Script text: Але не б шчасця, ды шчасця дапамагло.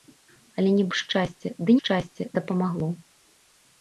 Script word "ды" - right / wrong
right